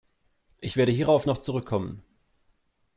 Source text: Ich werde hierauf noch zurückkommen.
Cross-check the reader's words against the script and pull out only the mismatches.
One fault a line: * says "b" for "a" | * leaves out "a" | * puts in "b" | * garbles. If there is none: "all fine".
all fine